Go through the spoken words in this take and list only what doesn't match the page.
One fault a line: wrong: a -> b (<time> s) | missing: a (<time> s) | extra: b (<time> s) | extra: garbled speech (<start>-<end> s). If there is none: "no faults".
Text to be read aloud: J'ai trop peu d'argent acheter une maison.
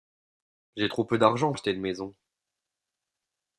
no faults